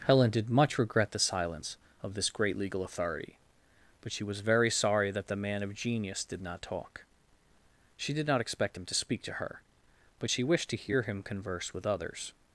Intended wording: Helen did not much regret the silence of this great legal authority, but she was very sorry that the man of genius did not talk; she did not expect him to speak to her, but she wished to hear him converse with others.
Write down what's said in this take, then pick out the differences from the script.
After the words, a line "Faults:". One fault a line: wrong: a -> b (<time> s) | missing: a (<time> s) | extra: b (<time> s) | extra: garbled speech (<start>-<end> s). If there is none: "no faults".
Helen did much regret the silence of this great legal authority, but she was very sorry that the man of genius did not talk; she did not expect him to speak to her, but she wished to hear him converse with others.
Faults:
missing: not (0.5 s)